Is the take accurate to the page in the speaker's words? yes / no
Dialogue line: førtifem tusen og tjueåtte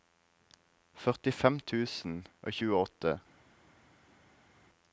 yes